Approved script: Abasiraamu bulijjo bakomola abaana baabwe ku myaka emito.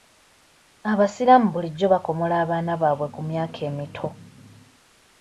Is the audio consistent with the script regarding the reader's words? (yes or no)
yes